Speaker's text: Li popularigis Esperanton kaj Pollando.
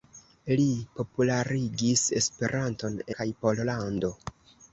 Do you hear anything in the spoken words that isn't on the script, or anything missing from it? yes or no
no